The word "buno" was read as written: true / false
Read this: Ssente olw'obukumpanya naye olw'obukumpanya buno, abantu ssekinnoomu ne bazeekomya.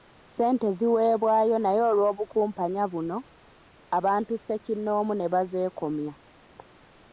true